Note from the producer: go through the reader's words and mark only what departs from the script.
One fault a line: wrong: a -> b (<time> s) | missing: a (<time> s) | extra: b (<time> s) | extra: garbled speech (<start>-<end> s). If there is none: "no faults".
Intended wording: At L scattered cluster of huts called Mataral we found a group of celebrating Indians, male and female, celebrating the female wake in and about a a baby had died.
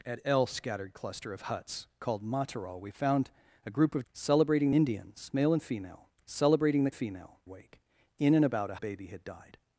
no faults